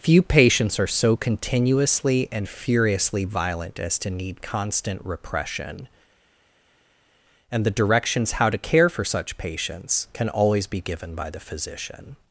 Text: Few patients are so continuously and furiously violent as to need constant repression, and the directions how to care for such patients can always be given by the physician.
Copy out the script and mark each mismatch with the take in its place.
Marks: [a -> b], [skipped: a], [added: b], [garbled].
Few patients are so continuously and furiously violent as to need constant repression, and the directions how to care for such patients can always be given by the physician.